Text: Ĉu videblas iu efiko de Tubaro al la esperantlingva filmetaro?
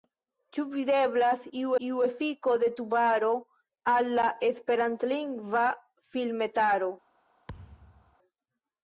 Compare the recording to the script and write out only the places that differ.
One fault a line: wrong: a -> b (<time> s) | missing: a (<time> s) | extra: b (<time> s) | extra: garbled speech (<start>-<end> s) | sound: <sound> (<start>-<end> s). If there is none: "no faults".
extra: iu (1.8 s)
sound: thud (7.5-8.2 s)